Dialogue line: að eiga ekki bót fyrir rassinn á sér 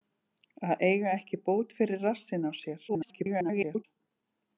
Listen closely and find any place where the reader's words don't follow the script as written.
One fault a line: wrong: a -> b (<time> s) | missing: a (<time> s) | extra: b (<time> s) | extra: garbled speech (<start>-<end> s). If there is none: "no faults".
extra: garbled speech (2.9-3.8 s)